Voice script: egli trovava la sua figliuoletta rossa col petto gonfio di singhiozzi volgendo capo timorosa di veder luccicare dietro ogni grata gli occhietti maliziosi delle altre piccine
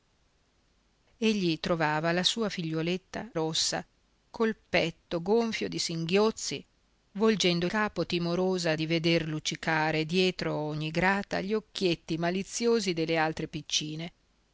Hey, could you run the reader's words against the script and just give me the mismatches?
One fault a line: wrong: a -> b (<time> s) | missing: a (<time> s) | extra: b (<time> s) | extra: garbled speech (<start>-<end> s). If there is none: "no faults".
no faults